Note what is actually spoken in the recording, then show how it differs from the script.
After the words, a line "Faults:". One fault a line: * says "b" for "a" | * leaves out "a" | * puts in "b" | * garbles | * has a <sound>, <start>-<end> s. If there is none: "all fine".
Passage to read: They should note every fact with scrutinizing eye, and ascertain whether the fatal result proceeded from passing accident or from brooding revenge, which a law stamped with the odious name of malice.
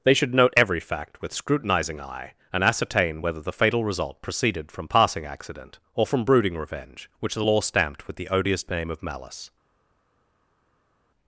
They should note every fact with scrutinizing eye, and ascertain whether the fatal result proceeded from passing accident or from brooding revenge, which the law stamped with the odious name of malice.
Faults:
* says "the" for "a"